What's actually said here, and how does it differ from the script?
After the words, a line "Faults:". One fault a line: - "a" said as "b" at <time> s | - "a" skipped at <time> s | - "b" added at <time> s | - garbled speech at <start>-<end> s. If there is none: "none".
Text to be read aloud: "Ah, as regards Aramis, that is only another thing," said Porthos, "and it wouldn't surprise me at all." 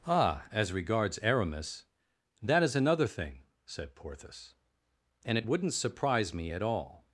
"Ah, as regards Aramis, that is another thing," said Porthos, "and it wouldn't surprise me at all."
Faults:
- "only" skipped at 2.8 s